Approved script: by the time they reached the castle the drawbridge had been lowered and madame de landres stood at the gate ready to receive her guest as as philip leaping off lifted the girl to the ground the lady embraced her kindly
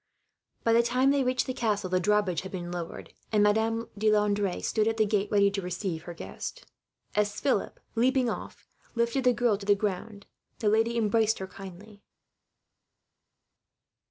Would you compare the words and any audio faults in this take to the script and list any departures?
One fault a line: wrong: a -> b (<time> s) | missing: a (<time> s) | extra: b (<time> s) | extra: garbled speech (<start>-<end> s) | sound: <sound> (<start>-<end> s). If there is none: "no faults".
missing: as (7.4 s)